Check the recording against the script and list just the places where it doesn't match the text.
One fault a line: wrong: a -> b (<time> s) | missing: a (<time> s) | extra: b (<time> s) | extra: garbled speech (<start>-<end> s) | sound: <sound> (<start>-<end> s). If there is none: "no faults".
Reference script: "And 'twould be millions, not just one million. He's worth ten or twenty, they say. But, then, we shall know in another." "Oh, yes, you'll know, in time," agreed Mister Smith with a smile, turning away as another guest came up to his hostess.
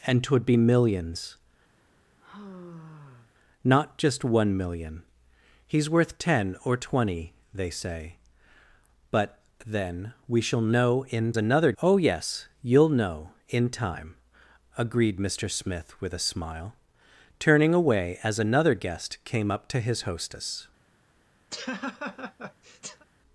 sound: sigh (1.8-3.3 s)
sound: laugh (21.5-23.1 s)